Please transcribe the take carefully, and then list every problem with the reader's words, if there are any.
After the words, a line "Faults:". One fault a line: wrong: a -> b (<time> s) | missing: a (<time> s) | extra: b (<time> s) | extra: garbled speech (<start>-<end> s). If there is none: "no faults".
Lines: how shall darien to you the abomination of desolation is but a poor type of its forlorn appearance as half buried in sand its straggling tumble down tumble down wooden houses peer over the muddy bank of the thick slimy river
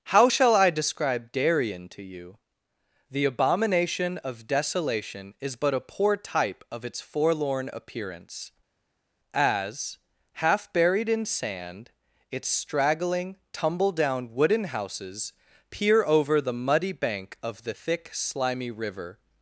how shall i describe darien to you the abomination of desolation is but a poor type of its forlorn appearance as half buried in sand its straggling tumble down wooden houses peer over the muddy bank of the thick slimy river
Faults:
extra: i describe (0.6 s)
missing: tumble down (14.3 s)